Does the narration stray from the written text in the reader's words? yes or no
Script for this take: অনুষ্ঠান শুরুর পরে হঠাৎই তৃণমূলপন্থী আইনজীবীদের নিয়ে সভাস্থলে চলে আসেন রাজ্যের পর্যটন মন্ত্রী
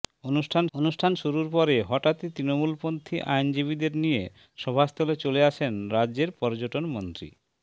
yes